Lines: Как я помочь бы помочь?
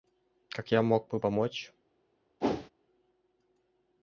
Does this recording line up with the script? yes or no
no